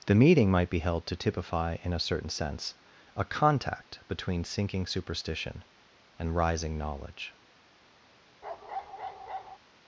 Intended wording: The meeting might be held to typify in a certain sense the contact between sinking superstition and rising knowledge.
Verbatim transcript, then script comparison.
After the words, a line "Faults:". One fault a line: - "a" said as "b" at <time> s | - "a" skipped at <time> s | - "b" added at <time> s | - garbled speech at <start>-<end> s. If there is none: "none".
The meeting might be held to typify in a certain sense a contact between sinking superstition and rising knowledge.
Faults:
- "the" said as "a" at 3.1 s